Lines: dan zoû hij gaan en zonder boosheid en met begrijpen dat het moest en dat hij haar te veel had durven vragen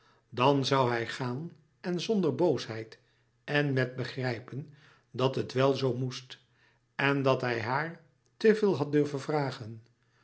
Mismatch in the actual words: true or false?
true